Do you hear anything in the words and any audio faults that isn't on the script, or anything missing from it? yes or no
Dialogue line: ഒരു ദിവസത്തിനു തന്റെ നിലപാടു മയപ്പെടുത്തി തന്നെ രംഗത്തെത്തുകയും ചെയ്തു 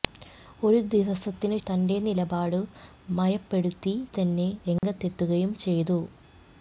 yes